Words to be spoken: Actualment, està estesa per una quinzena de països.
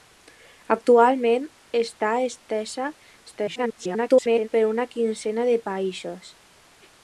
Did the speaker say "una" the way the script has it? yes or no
yes